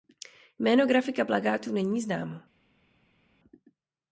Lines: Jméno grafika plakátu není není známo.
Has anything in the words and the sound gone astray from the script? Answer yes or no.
yes